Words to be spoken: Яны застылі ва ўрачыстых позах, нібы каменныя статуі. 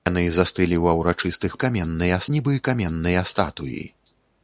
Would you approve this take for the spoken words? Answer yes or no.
no